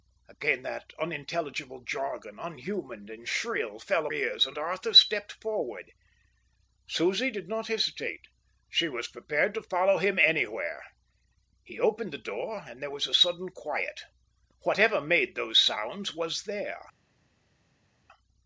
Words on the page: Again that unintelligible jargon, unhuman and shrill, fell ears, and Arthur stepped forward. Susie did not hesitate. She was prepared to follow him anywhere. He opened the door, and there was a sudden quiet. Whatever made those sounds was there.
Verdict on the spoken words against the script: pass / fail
pass